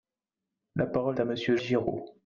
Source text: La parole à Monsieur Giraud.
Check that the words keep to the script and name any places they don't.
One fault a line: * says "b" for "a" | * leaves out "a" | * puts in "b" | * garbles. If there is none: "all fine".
all fine